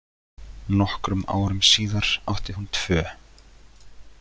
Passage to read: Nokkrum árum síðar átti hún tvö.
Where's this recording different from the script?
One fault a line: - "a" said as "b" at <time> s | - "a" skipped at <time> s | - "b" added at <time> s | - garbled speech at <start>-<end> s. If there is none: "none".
none